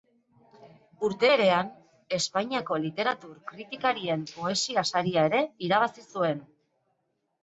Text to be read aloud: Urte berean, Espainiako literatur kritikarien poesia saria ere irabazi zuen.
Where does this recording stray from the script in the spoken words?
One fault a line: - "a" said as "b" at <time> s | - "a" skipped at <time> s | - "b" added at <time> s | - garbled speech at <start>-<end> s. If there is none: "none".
none